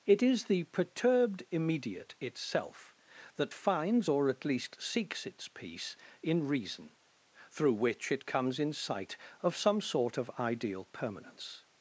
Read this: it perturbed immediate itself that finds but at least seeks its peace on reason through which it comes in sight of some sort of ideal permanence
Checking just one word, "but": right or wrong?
wrong